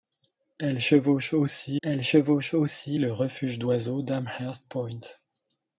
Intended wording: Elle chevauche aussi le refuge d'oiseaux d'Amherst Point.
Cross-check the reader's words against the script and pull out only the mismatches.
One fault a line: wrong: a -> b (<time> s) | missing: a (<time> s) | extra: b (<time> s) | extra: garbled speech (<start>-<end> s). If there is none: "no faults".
extra: elle chevauche aussi (1.8 s)